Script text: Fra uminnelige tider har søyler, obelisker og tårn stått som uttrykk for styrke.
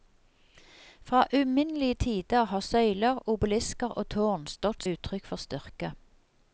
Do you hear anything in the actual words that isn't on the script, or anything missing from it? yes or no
yes